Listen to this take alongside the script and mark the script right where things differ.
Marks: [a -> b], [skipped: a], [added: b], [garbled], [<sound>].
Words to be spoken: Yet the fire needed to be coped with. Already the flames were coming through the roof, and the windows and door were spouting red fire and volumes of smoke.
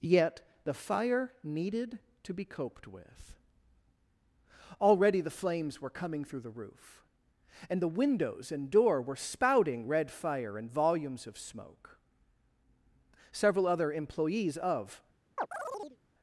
Yet the fire needed to be coped with. Already the flames were coming through the roof, and the windows and door were spouting red fire and volumes of smoke. [added: Several other employees of] [chirp]